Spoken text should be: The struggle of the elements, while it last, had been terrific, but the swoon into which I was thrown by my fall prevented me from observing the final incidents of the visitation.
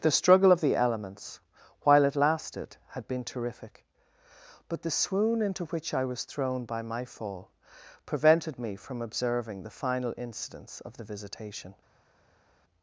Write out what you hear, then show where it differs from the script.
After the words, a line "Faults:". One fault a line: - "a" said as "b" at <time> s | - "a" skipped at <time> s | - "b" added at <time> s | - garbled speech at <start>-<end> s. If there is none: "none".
The struggle of the elements, while it lasted, had been terrific, but the swoon into which I was thrown by my fall prevented me from observing the final incidents of the visitation.
Faults:
- "last" said as "lasted" at 2.1 s